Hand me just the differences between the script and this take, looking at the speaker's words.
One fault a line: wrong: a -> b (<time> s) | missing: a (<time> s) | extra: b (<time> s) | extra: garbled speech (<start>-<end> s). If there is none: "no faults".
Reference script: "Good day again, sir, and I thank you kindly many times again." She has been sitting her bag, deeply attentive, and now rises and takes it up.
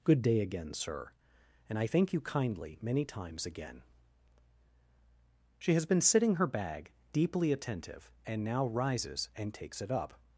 no faults